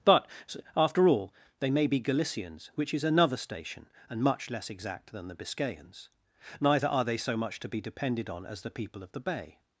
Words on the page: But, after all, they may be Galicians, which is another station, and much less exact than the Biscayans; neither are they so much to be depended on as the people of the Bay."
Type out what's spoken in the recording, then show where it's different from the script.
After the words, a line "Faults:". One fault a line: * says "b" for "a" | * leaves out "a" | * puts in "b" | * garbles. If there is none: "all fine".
But, after all, they may be Galicians, which is another station, and much less exact than the Biscayans; neither are they so much to be depended on as the people of the Bay."
Faults:
all fine